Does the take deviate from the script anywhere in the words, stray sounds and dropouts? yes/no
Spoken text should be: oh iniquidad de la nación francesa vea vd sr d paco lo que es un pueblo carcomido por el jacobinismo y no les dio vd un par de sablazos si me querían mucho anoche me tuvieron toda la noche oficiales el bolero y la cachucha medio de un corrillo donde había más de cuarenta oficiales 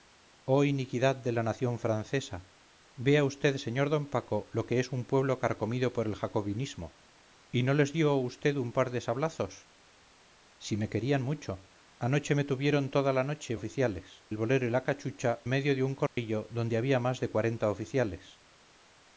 yes